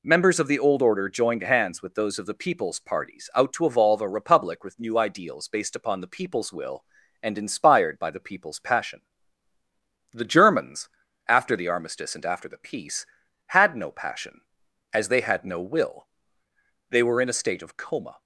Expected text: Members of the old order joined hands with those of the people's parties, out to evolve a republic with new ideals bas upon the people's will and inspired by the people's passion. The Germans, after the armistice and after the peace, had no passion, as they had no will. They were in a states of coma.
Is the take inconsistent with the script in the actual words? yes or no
yes